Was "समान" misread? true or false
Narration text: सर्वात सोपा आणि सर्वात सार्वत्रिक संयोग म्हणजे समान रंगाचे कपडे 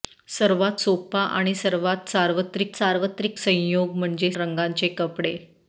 true